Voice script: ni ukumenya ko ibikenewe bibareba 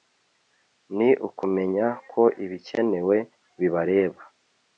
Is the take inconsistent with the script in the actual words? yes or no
no